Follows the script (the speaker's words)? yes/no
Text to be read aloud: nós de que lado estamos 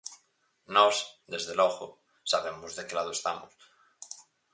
no